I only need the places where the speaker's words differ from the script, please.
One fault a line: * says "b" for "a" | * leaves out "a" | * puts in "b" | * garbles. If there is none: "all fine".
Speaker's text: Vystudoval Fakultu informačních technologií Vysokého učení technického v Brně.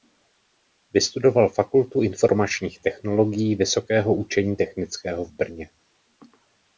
all fine